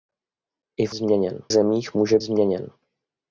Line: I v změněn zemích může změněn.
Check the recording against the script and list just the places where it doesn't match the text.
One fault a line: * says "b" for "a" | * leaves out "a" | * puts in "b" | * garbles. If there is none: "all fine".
all fine